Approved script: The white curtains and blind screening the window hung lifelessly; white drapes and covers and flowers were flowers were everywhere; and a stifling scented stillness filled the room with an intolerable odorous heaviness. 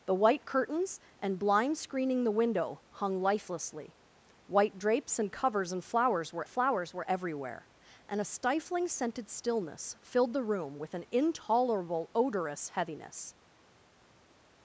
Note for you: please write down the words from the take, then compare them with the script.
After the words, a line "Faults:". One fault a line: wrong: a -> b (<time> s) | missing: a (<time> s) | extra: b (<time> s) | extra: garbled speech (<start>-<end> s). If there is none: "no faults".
The white curtains and blind screening the window hung lifelessly; white drapes and covers and flowers were flowers were everywhere; and a stifling scented stillness filled the room with an intolerable odorous heaviness.
Faults:
no faults